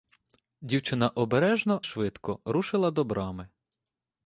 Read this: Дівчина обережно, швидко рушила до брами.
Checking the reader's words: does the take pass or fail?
pass